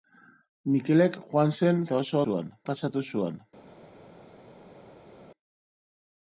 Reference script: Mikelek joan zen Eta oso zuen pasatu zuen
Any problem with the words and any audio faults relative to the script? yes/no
no